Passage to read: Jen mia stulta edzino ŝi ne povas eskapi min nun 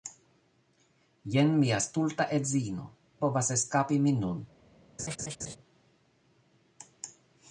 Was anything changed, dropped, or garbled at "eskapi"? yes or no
no